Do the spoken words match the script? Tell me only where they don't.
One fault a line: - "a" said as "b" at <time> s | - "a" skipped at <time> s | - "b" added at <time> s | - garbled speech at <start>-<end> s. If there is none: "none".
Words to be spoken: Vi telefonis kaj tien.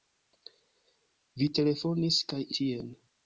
none